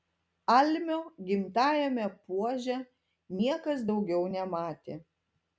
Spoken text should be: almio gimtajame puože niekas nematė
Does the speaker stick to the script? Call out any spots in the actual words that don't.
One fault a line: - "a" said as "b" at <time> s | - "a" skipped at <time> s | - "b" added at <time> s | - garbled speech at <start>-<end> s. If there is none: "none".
- "daugiau" added at 3.9 s